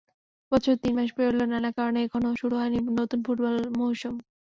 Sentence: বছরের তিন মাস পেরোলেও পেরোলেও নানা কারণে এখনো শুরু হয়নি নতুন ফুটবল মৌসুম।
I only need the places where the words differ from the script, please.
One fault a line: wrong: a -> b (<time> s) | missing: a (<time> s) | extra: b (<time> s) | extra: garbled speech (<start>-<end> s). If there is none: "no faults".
missing: পেরোলেও (1.5 s)